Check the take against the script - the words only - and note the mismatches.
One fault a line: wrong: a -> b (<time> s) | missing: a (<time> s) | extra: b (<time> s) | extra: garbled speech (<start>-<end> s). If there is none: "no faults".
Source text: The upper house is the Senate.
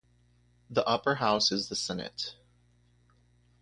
no faults